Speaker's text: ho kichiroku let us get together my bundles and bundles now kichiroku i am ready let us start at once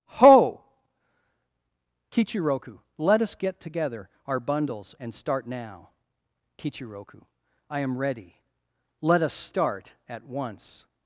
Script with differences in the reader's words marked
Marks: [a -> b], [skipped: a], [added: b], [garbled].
ho kichiroku let us get together [my -> our] bundles and [bundles -> start] now kichiroku i am ready let us start at once